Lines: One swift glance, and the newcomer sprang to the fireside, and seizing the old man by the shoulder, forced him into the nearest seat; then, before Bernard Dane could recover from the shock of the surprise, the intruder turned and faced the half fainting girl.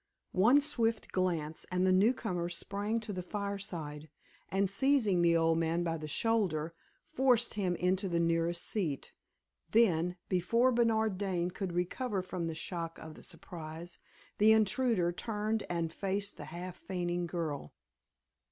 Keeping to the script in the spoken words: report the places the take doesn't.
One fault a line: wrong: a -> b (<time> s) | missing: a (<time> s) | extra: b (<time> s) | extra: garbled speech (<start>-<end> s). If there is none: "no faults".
no faults